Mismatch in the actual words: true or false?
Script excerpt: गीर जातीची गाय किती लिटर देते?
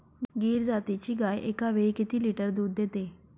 true